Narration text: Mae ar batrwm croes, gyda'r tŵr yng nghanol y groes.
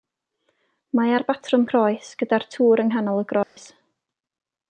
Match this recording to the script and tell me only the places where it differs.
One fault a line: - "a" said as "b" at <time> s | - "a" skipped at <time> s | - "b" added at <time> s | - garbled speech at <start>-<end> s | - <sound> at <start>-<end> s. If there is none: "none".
- dropout at 3.4-3.6 s